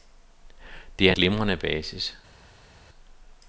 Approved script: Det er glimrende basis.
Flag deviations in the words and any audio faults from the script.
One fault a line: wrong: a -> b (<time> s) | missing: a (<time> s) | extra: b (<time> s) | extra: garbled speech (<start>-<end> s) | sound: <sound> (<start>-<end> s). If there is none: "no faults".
no faults